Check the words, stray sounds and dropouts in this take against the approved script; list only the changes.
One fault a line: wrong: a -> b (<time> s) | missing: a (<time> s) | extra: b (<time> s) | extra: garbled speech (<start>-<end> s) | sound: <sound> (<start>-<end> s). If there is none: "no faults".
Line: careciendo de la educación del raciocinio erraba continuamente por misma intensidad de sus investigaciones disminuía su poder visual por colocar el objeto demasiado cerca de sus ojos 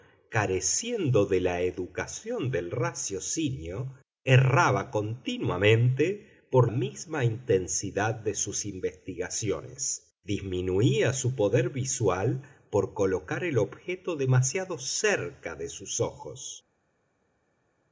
no faults